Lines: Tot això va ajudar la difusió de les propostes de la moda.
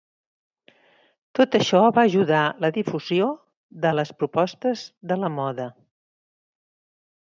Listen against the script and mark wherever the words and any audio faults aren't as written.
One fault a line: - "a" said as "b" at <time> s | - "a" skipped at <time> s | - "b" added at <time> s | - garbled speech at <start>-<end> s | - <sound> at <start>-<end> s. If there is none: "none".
none